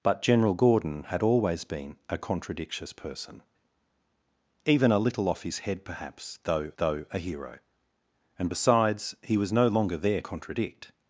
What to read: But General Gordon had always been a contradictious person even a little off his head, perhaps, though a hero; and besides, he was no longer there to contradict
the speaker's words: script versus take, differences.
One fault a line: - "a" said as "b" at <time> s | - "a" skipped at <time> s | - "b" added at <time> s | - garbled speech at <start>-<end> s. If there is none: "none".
- "though" added at 6.8 s
- "to" skipped at 10.2 s